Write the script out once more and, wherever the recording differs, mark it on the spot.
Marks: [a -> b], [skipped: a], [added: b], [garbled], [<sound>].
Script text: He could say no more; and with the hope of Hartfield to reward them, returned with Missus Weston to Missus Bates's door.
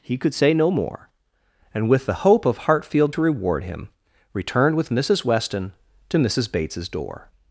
He could say no more; and with the hope of Hartfield to reward [them, -> him] returned with Missus Weston to Missus Bates's door.